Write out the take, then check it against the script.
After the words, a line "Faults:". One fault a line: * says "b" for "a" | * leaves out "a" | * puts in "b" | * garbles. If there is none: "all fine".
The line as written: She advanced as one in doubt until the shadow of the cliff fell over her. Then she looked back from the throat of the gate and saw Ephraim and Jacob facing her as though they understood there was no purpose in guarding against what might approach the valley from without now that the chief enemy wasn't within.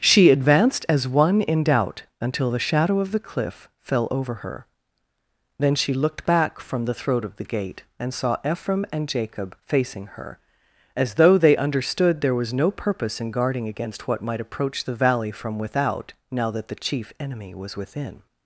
She advanced as one in doubt until the shadow of the cliff fell over her. Then she looked back from the throat of the gate and saw Ephraim and Jacob facing her as though they understood there was no purpose in guarding against what might approach the valley from without now that the chief enemy was within.
Faults:
* says "was" for "wasn't"